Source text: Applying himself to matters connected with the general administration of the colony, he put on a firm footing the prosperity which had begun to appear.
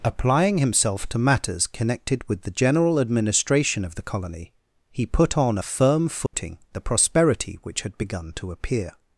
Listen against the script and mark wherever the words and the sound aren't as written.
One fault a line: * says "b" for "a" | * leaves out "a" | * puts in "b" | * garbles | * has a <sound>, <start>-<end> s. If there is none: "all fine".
* has a dropout, 6.3-6.3 s